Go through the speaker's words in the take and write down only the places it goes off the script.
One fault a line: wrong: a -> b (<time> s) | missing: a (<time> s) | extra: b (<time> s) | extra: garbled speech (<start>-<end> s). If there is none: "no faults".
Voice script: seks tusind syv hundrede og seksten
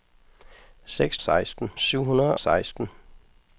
wrong: tusind -> seksten (1.2 s)
missing: og (2.4 s)